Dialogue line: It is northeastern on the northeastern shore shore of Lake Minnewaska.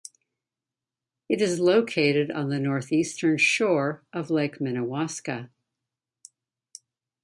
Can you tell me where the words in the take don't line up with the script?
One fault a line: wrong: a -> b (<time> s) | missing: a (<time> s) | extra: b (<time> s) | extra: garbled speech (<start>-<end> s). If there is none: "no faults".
wrong: northeastern -> located (1.6 s)
missing: shore (4.0 s)